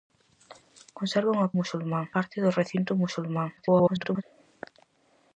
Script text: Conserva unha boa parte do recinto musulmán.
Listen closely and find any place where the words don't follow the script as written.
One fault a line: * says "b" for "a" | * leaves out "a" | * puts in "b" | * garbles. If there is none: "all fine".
* says "musulmán" for "boa"
* garbles